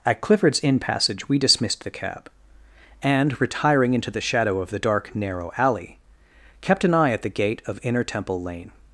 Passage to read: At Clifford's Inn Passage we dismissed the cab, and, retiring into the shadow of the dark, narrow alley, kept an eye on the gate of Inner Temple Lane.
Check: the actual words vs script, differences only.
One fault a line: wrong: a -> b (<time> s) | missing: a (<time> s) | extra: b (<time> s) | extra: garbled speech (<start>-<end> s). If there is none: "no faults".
wrong: on -> at (7.1 s)